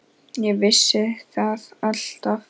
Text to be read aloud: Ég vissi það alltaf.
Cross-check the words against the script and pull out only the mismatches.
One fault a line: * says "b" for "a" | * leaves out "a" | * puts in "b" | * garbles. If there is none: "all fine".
all fine